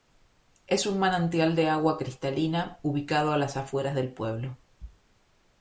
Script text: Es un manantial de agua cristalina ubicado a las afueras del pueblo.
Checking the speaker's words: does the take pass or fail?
pass